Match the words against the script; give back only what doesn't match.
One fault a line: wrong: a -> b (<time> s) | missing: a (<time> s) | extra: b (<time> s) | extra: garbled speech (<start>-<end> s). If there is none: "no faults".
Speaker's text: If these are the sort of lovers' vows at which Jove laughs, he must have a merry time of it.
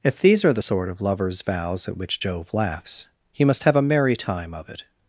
no faults